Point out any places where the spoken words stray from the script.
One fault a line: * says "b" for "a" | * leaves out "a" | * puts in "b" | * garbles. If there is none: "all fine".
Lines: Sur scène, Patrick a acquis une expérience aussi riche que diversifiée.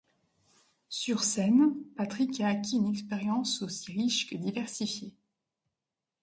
all fine